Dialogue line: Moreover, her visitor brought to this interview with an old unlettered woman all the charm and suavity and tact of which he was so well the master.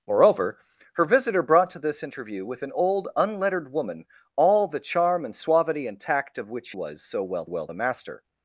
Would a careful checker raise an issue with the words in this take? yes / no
yes